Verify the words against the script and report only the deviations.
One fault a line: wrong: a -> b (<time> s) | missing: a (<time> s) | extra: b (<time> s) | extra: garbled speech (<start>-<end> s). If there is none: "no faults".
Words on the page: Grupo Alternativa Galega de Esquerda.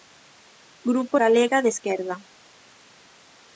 missing: Alternativa (1.2 s)